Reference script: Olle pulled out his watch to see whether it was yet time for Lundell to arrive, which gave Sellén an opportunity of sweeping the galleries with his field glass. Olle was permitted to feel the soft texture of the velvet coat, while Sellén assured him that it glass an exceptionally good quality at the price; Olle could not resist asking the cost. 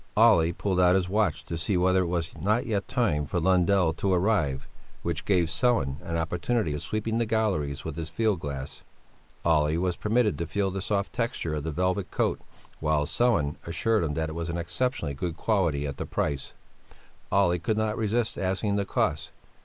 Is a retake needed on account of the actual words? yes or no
yes